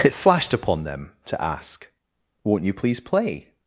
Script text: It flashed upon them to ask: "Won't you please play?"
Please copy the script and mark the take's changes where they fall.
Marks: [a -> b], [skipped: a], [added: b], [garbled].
It flashed upon them to ask: "Won't you please play?"